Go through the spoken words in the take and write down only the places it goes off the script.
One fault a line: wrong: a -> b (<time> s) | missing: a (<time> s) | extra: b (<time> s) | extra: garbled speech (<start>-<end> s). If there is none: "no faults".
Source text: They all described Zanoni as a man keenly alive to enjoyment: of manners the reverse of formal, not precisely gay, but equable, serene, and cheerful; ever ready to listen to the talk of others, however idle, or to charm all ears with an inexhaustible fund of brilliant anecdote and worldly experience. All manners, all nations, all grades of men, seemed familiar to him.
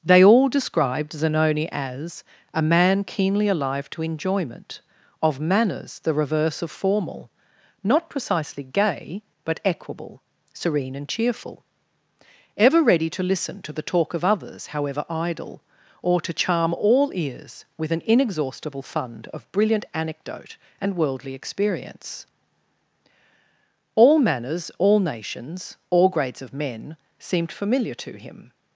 no faults